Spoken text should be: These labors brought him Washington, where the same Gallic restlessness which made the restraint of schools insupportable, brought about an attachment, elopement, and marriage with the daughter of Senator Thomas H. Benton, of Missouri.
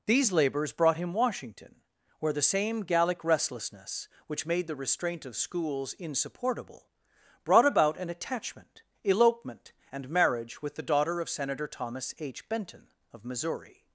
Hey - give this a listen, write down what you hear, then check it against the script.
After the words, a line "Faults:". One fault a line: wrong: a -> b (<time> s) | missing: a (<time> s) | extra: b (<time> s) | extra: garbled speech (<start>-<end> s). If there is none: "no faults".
These labors brought him Washington, where the same Gallic restlessness which made the restraint of schools insupportable, brought about an attachment, elopement, and marriage with the daughter of Senator Thomas H. Benton, of Missouri.
Faults:
no faults